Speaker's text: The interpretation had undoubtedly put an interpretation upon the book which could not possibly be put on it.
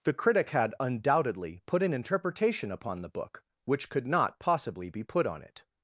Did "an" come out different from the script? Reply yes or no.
no